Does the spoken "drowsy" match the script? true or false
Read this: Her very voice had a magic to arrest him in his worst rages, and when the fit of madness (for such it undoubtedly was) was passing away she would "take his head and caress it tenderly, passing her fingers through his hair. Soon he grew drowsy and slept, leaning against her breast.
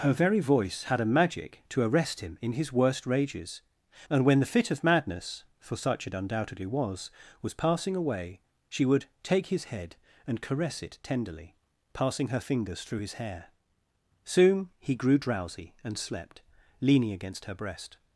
true